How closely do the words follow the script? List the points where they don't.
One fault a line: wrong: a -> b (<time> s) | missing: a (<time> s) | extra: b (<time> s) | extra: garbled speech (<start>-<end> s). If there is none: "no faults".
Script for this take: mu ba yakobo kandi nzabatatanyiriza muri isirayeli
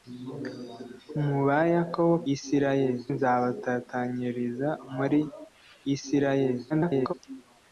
wrong: kandi -> isirayeli (2.3 s)
extra: garbled speech (6.7-7.1 s)